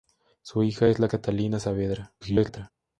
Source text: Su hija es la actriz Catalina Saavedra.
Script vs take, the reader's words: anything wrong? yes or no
yes